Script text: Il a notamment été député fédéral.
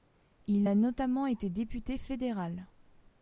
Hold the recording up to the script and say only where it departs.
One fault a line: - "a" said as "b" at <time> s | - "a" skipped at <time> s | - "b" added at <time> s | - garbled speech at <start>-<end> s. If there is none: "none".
none